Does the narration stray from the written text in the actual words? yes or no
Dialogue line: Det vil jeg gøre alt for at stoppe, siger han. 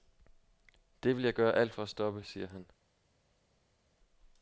no